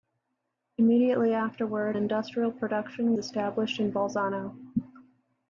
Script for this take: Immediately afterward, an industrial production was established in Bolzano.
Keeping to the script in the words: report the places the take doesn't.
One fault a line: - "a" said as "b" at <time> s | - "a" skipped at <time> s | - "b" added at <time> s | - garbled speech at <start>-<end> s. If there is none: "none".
- "an" skipped at 1.9 s
- "was" skipped at 3.1 s